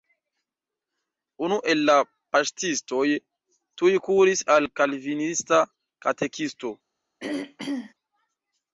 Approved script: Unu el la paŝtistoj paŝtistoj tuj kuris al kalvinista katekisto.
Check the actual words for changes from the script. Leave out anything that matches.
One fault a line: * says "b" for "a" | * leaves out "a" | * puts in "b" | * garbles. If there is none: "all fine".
* leaves out "paŝtistoj"